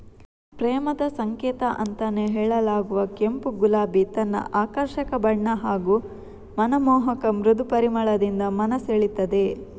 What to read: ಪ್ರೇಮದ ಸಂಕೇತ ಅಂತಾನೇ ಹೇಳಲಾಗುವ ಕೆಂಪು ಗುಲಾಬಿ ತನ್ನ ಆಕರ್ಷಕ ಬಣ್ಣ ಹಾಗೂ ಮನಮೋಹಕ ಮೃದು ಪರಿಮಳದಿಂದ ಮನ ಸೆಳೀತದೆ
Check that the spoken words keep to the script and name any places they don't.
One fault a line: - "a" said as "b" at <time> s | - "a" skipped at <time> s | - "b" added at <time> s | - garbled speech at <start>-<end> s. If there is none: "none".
none